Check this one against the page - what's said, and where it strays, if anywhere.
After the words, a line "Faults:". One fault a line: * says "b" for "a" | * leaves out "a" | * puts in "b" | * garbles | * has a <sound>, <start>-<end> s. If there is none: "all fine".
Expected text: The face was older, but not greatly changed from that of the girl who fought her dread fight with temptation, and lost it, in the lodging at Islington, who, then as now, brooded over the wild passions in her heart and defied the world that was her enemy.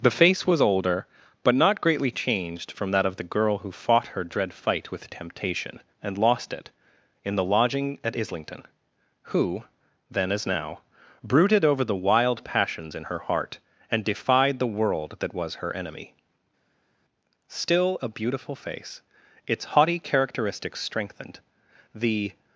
The face was older, but not greatly changed from that of the girl who fought her dread fight with temptation, and lost it, in the lodging at Islington, who, then as now, brooded over the wild passions in her heart and defied the world that was her enemy. Still a beautiful face, its haughty characteristics strengthened, the
Faults:
* puts in "Still a beautiful face its haughty characteristics strengthened the"